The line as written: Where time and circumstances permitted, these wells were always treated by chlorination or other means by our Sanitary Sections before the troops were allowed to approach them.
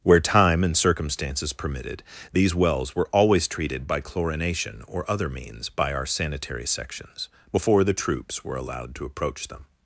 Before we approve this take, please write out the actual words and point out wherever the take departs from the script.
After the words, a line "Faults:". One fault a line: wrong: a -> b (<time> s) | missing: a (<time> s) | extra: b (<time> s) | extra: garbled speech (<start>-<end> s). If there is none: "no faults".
Where time and circumstances permitted, these wells were always treated by chlorination or other means by our Sanitary Sections before the troops were allowed to approach them.
Faults:
no faults